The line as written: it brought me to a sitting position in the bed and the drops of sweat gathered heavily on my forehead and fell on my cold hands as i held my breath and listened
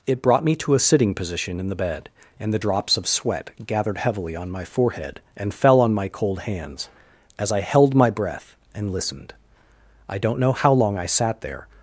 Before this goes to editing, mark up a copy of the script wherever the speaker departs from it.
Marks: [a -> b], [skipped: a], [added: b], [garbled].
it brought me to a sitting position in the bed and the drops of sweat gathered heavily on my forehead and fell on my cold hands as i held my breath and listened [added: i don't know how long i sat there]